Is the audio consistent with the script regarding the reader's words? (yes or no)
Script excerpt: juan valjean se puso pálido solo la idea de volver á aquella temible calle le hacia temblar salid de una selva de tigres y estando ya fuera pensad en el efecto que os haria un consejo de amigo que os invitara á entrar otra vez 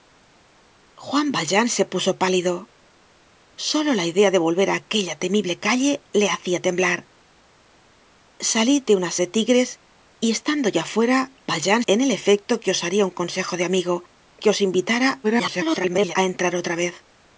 no